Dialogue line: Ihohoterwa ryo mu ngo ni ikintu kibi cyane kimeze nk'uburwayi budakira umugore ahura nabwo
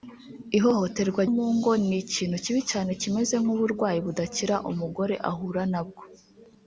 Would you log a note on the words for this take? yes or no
yes